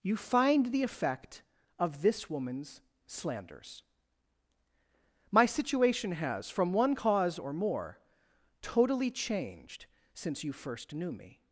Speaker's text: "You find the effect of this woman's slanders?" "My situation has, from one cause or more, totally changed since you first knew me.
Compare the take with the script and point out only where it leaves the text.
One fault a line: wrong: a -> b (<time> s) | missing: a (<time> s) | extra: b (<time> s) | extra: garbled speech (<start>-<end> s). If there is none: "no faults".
no faults